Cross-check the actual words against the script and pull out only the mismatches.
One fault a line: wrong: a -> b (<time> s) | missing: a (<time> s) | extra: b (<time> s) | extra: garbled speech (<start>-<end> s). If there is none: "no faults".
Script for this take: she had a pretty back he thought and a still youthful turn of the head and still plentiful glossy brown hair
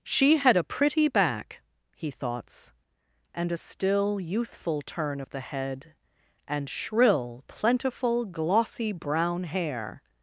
wrong: thought -> thoughts (2.1 s)
wrong: still -> shrill (6.7 s)